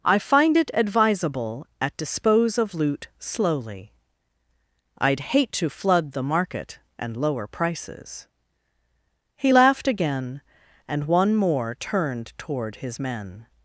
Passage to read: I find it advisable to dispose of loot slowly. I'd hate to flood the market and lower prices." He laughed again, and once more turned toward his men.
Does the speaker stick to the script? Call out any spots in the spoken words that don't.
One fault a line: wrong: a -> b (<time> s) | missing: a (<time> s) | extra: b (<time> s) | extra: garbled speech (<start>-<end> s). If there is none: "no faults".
wrong: to -> at (1.8 s)
wrong: once -> one (11.1 s)